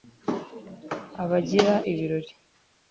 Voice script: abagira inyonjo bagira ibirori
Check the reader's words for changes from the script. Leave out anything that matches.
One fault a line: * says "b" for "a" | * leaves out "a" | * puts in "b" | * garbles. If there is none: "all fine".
* leaves out "inyonjo bagira"